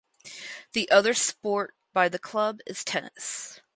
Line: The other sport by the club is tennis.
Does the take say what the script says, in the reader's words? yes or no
yes